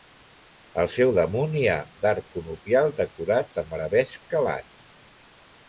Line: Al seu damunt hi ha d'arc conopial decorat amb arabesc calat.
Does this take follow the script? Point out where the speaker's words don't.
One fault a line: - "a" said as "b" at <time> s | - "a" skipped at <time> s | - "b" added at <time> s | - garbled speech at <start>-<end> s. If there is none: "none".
none